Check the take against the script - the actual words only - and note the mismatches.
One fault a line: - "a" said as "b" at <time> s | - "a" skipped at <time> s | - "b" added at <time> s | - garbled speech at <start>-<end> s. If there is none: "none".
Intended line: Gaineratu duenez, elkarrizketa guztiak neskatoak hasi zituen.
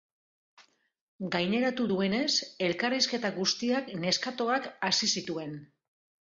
none